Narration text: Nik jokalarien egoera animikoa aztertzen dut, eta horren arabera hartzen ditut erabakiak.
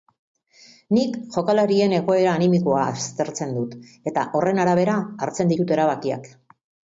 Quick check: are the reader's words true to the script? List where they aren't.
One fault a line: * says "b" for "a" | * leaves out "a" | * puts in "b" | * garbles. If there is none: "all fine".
all fine